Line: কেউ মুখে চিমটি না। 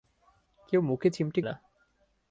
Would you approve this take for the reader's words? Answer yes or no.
yes